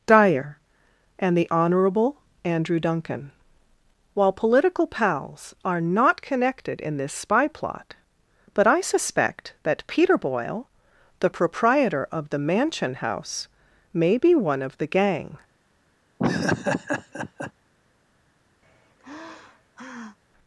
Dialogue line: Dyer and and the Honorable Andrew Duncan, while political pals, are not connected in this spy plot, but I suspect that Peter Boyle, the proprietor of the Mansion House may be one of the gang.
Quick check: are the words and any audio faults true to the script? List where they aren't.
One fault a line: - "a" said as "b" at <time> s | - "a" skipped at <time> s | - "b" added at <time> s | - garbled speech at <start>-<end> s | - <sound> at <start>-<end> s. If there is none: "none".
- "and" skipped at 1.4 s
- laugh at 16.2-17.5 s
- sigh at 18.6-20.2 s